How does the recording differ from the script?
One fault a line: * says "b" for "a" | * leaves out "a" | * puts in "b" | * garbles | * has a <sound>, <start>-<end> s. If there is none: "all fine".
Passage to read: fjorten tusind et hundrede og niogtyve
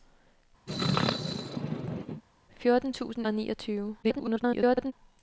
* has a sneeze, 0.7-2.2 s
* leaves out "et hundrede"
* garbles